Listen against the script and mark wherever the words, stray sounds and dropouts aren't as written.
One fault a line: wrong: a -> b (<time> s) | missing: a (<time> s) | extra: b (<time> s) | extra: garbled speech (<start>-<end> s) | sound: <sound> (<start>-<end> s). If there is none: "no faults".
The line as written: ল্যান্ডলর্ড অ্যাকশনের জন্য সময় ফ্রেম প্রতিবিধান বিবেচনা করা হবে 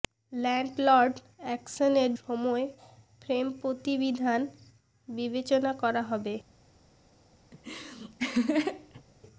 missing: জন্য (2.1 s)
sound: laugh (7.5-9.0 s)